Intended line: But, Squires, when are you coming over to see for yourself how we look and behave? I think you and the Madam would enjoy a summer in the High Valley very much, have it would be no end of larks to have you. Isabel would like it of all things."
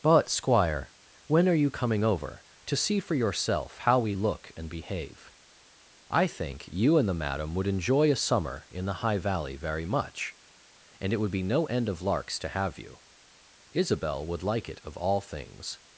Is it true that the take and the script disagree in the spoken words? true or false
true